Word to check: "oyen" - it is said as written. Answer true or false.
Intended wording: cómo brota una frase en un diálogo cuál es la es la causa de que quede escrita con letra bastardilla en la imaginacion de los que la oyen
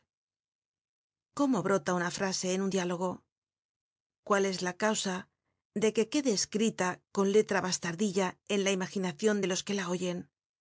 true